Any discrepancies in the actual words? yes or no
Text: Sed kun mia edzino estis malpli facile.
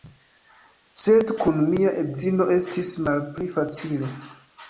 no